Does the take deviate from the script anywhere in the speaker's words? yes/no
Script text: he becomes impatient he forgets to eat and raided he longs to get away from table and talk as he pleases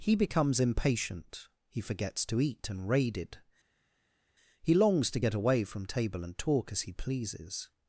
no